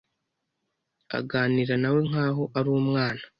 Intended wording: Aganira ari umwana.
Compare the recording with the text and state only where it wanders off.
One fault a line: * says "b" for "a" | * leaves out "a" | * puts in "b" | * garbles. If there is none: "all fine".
* puts in "nawe nkaho"